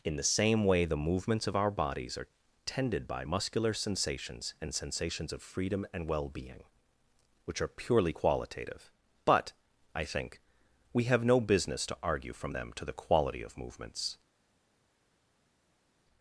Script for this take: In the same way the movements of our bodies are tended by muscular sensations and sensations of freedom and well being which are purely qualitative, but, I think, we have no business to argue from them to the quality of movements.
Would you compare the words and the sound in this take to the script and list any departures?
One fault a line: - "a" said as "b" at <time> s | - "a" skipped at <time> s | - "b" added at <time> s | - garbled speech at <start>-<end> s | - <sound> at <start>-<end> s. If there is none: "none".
none